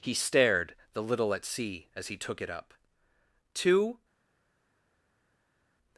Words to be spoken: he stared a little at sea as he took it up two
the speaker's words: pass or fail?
fail